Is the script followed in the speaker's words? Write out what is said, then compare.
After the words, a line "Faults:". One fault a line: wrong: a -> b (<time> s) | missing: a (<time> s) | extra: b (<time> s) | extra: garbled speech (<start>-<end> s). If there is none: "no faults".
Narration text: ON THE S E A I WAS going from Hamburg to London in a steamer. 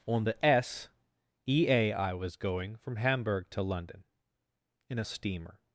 ON THE S E A I WAS going from Hamburg to London in a steamer.
Faults:
no faults